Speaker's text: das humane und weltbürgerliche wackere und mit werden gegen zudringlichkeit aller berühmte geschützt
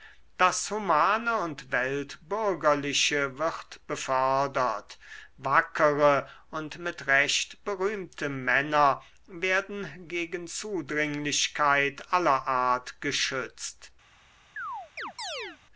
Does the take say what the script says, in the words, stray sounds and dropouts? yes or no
no